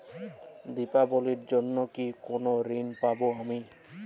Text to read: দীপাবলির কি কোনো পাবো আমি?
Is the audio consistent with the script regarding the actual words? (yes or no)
no